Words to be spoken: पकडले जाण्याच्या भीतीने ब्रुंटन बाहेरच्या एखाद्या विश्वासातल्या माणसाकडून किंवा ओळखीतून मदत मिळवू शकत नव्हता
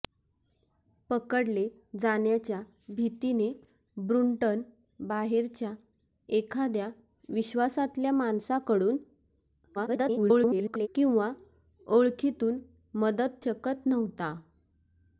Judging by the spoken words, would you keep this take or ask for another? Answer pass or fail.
fail